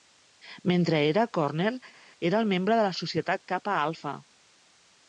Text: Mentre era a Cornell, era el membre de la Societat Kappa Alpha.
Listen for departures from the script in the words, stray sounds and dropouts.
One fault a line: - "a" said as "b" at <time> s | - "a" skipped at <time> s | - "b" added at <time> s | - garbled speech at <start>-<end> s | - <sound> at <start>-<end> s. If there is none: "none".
none